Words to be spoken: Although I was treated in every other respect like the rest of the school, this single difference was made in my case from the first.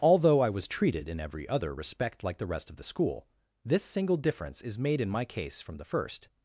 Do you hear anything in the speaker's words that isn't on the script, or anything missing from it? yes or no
yes